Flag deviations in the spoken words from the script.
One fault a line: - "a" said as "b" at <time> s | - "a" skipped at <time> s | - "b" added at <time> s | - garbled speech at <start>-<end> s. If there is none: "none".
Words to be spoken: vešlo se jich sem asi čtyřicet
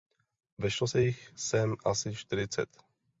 none